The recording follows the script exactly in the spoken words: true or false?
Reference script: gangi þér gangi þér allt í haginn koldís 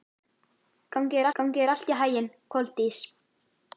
true